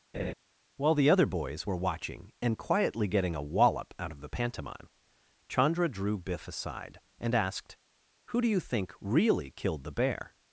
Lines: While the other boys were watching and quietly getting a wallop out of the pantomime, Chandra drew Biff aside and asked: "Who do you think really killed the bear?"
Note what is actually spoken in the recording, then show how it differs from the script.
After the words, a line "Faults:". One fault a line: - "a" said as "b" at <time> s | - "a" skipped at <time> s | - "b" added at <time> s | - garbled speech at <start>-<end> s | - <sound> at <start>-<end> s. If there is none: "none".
While the other boys were watching and quietly getting a wallop out of the pantomime, Chandra drew Biff aside and asked: "Who do you think really killed the bear?"
Faults:
- laugh at 0.1-0.3 s